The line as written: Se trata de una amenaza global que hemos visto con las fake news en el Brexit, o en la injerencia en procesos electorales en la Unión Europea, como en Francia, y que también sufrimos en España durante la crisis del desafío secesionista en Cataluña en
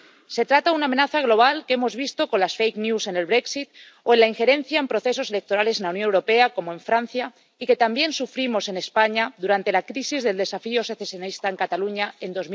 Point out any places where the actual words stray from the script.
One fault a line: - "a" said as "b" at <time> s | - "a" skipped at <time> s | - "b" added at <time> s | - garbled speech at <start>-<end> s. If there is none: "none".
none